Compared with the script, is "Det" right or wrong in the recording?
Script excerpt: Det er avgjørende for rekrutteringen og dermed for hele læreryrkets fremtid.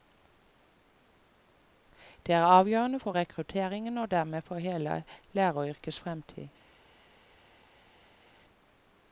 right